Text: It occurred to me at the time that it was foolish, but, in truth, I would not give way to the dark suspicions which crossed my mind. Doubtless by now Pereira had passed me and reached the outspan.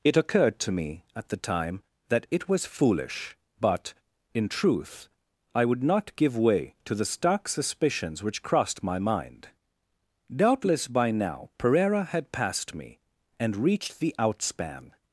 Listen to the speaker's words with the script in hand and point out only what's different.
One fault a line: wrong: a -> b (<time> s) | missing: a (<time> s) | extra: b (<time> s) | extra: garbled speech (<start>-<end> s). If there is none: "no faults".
wrong: dark -> stark (7.0 s)